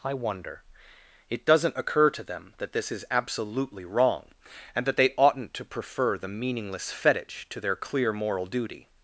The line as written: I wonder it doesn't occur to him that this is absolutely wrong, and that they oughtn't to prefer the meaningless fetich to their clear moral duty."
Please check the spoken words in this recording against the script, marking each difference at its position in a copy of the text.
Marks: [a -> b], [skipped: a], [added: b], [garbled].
I wonder it doesn't occur to [him -> them] that this is absolutely wrong, and that they oughtn't to prefer the meaningless fetich to their clear moral duty."